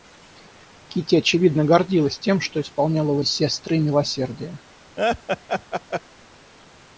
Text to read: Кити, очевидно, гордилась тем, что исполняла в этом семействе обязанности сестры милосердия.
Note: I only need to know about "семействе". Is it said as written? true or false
false